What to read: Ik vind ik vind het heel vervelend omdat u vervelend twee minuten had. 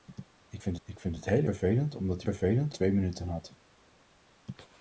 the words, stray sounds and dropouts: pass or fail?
pass